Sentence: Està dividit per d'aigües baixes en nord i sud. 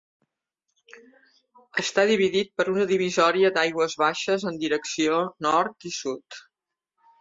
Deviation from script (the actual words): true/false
true